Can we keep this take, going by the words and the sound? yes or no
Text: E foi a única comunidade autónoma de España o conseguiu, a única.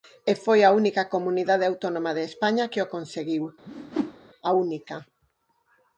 no